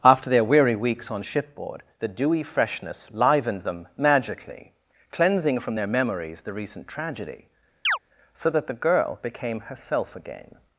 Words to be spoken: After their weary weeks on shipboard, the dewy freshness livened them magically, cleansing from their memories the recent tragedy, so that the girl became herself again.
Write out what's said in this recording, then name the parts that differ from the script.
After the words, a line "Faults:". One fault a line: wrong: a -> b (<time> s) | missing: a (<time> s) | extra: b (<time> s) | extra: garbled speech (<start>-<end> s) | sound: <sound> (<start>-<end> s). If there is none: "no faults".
After their weary weeks on shipboard, the dewy freshness livened them magically, cleansing from their memories the recent tragedy, so that the girl became herself again.
Faults:
sound: chirp (7.8-8.0 s)